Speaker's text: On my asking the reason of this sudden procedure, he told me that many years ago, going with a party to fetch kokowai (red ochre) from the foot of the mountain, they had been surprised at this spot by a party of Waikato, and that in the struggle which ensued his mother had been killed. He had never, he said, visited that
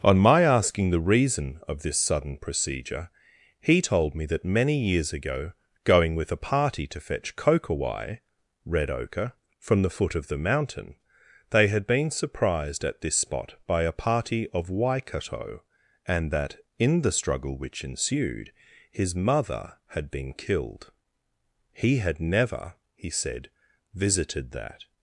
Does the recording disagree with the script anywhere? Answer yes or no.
no